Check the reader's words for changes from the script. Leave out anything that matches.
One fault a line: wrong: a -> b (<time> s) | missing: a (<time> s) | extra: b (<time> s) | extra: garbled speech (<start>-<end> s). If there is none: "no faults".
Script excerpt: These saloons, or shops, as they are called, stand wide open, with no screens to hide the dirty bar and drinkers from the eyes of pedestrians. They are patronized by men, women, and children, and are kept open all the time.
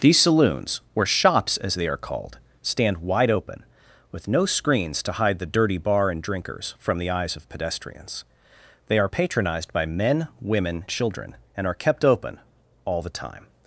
missing: and (10.8 s)